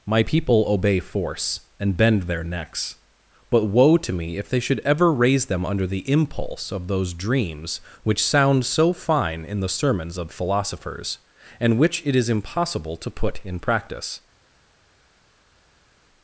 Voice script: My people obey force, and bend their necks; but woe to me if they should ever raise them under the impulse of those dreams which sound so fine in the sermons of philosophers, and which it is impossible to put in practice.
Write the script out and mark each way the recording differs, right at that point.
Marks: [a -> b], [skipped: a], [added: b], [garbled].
My people obey force, and bend their necks; but woe to me if they should ever raise them under the impulse of those dreams which sound so fine in the sermons of philosophers, and which it is impossible to put in practice.